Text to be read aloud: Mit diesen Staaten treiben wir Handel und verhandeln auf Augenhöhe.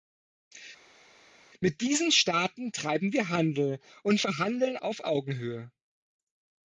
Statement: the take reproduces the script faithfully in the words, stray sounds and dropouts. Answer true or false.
true